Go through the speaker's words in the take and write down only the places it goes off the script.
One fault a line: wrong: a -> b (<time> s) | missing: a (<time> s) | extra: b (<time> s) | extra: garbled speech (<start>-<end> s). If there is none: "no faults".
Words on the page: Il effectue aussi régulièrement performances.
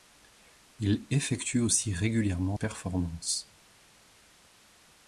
no faults